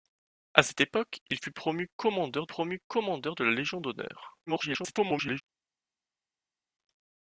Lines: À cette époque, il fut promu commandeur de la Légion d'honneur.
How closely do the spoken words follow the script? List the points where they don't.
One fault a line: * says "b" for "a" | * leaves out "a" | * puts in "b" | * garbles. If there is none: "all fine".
* puts in "promu commandeur"
* garbles